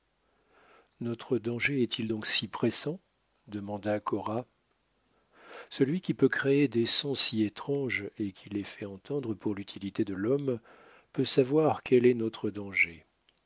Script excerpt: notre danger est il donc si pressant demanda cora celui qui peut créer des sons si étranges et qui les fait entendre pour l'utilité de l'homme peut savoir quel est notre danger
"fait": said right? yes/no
yes